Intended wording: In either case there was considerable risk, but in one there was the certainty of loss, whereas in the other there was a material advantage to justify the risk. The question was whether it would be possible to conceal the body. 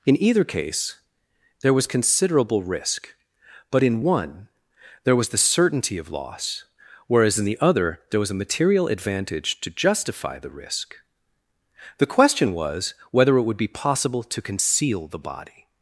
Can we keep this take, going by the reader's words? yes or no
yes